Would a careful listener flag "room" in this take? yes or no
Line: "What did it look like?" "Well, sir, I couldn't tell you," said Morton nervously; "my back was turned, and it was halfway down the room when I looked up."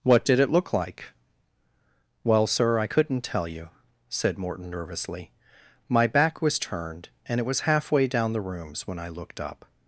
yes